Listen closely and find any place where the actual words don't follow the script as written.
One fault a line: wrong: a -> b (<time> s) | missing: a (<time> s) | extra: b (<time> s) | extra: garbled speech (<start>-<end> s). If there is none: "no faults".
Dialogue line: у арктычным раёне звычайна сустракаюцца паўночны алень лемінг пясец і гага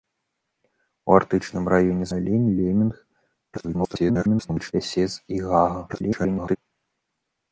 missing: звычайна сустракаюцца паўночны (2.0 s)
extra: garbled speech (3.5-4.7 s)
extra: garbled speech (5.9-6.6 s)